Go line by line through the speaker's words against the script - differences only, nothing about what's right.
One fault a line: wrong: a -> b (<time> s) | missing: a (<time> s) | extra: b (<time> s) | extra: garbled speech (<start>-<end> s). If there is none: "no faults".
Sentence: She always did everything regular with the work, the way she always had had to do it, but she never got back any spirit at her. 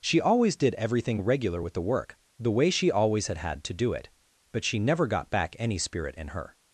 wrong: at -> in (6.2 s)